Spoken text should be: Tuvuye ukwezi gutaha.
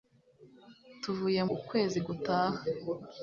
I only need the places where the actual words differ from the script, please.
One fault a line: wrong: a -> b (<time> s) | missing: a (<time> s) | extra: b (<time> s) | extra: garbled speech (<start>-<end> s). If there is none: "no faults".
no faults